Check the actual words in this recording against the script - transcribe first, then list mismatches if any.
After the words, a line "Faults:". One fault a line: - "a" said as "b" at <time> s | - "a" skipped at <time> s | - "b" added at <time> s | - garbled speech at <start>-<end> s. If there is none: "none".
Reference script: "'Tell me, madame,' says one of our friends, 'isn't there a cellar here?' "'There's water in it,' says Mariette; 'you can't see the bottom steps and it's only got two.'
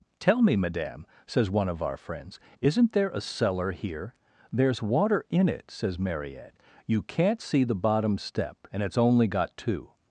"'Tell me, madame,' says one of our friends, 'isn't there a cellar here?' "'There's water in it,' says Mariette; 'you can't see the bottom step and it's only got two.'
Faults:
- "steps" said as "step" at 8.2 s